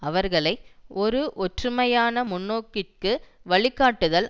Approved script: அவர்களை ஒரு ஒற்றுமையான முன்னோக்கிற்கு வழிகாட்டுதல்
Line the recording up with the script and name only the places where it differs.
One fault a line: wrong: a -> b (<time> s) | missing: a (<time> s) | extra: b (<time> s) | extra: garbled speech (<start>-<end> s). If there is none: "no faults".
no faults